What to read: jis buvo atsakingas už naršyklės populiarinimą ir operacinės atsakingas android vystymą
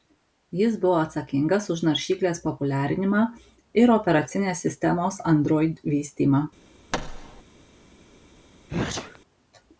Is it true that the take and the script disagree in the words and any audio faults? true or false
true